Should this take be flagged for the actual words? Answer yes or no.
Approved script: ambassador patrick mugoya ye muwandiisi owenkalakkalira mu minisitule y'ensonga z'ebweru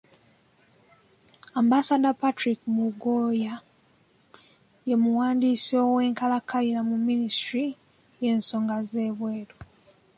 no